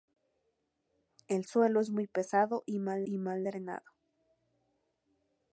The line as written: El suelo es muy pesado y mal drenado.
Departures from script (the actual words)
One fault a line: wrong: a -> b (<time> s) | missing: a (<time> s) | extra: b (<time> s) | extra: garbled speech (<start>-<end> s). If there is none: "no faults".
extra: y mal (3.0 s)